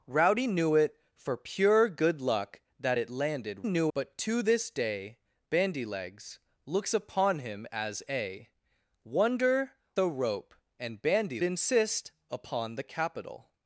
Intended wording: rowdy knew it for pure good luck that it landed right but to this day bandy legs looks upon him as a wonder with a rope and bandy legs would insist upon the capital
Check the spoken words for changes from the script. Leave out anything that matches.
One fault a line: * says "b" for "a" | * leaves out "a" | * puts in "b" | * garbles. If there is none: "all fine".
* says "knew" for "right"
* leaves out "with"
* leaves out "legs would"